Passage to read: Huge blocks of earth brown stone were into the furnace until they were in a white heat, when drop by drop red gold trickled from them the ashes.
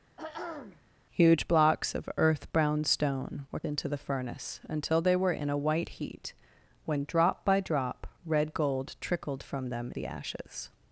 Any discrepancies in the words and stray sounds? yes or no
yes